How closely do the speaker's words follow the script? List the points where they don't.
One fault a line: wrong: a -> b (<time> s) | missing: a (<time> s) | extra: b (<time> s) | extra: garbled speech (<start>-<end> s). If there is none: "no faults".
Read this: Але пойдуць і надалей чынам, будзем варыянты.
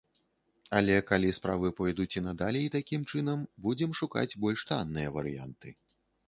extra: калі справы (1.1 s)
extra: такім (2.8 s)
extra: шукаць больш танныя (4.0 s)